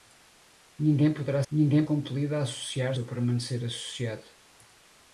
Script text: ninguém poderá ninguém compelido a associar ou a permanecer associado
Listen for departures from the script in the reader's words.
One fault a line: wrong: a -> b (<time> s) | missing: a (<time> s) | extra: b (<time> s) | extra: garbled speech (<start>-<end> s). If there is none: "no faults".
no faults